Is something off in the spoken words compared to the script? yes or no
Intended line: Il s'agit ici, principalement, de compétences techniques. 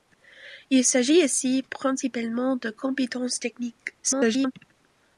yes